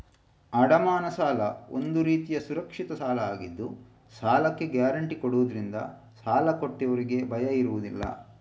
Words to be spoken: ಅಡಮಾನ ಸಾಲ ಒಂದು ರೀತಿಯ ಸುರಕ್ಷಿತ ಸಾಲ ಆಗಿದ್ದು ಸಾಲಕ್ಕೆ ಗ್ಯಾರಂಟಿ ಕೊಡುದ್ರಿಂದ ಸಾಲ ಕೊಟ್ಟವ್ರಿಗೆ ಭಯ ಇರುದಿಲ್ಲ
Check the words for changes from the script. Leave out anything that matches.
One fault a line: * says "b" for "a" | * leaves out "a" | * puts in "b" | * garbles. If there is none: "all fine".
all fine